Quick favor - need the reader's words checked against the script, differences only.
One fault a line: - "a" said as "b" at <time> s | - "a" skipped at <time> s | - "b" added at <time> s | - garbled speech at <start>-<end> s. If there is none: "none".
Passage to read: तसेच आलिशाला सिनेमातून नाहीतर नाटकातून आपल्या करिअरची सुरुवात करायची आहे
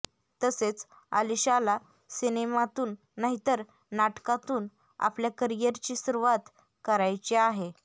none